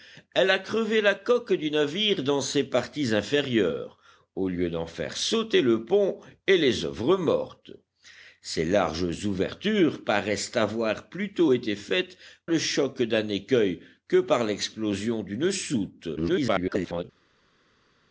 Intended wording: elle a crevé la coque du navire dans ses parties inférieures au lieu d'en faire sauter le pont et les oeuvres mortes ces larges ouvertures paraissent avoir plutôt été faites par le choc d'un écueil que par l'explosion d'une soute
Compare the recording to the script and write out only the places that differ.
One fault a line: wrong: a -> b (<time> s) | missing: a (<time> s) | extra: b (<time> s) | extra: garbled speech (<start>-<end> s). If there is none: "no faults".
missing: par (12.2 s)
extra: garbled speech (16.2-17.0 s)